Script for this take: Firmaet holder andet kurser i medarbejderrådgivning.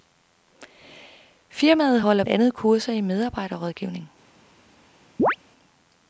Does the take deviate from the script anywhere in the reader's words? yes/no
no